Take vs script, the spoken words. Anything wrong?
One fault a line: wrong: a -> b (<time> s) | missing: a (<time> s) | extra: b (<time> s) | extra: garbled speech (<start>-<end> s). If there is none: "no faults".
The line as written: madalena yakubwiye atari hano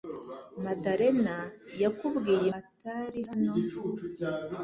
no faults